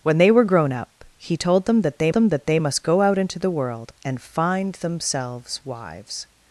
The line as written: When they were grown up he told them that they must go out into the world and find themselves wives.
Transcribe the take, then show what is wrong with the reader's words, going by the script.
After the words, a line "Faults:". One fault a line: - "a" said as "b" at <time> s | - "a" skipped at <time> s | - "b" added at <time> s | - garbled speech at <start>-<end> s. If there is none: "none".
When they were grown up he told them that they them that they must go out into the world and find themselves wives.
Faults:
- "them that they" added at 2.1 s